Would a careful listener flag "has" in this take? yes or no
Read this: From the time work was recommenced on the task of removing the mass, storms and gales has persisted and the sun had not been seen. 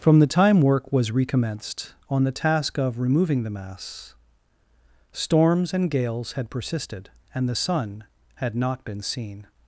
yes